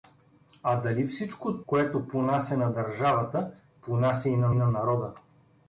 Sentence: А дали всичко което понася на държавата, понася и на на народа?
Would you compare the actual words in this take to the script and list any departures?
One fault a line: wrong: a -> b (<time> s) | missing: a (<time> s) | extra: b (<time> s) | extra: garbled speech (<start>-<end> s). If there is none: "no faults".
no faults